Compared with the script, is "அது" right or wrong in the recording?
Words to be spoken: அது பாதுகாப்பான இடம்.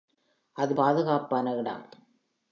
right